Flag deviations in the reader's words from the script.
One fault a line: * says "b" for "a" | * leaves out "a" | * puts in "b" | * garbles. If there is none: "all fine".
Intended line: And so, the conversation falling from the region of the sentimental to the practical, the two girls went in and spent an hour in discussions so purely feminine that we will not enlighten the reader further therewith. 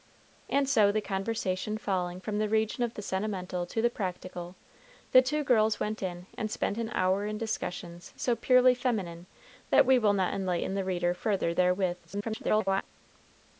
* garbles